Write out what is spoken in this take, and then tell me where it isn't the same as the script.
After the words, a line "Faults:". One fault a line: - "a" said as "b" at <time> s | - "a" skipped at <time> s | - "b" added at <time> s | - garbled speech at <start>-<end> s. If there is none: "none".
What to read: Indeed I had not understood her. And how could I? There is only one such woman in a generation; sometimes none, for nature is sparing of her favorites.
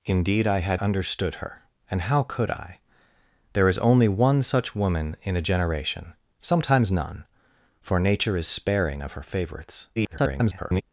Indeed I had understood her. And how could I? There is only one such woman in a generation; sometimes none, for nature is sparing of her favorites. [garbled]
Faults:
- "not" skipped at 0.8 s
- garbled speech at 10.0-10.8 s